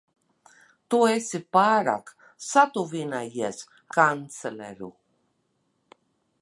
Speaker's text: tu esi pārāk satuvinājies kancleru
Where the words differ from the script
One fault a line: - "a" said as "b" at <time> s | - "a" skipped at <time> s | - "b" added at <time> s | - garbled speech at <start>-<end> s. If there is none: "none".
none